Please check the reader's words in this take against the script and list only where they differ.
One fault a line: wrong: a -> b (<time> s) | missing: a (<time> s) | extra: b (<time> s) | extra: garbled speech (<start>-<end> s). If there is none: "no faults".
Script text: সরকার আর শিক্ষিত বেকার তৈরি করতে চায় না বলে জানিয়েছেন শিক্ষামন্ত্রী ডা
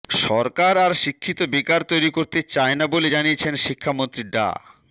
no faults